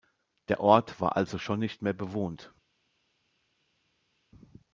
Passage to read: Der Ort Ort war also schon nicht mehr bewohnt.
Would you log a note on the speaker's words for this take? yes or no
yes